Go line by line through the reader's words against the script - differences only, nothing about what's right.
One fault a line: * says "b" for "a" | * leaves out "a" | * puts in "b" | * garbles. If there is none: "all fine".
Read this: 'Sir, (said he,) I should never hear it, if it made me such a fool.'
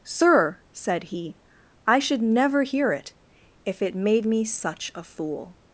all fine